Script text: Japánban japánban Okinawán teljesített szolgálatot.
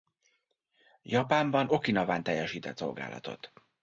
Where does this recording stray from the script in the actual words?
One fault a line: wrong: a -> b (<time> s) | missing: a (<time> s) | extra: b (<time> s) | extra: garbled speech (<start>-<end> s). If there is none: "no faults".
missing: japánban (1.7 s)